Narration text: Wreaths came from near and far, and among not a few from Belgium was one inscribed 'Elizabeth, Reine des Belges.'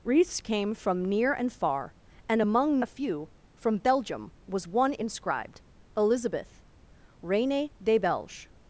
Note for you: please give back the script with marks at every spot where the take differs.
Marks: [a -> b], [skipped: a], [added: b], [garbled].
Wreaths came from near and far, and among [skipped: not] a few from Belgium was one inscribed 'Elizabeth, Reine des Belges.'